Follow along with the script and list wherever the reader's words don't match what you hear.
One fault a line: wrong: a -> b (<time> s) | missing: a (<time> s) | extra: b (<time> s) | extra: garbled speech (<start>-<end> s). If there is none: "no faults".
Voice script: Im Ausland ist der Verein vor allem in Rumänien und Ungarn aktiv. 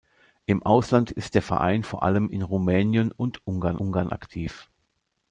extra: Ungarn (3.8 s)